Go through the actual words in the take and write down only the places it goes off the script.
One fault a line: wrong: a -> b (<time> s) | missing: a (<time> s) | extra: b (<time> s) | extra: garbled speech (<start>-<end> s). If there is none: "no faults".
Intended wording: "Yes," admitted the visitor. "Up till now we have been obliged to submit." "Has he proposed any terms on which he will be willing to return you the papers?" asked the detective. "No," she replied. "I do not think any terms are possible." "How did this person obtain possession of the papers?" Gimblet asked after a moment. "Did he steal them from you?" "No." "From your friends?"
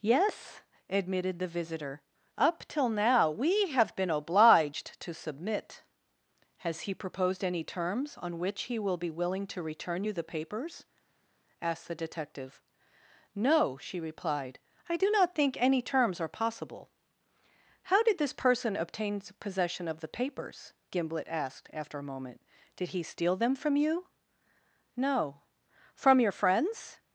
no faults